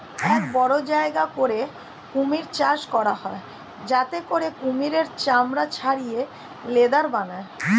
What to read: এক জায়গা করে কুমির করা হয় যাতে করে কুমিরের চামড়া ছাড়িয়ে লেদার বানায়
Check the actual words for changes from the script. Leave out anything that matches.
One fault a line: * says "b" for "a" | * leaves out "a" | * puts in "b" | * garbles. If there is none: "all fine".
* puts in "বড়"
* puts in "চাষ"